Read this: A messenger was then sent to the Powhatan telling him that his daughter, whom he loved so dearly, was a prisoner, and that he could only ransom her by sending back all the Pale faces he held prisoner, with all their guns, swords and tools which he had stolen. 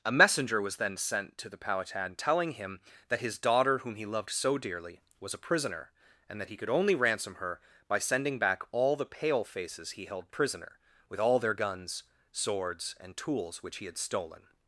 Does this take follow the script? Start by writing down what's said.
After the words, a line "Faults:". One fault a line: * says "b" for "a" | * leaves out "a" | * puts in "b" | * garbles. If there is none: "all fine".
A messenger was then sent to the Powhatan telling him that his daughter, whom he loved so dearly, was a prisoner, and that he could only ransom her by sending back all the Pale faces he held prisoner, with all their guns, swords and tools which he had stolen.
Faults:
all fine